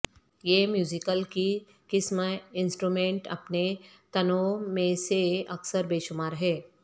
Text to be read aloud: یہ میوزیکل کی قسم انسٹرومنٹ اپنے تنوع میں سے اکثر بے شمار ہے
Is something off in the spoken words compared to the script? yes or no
no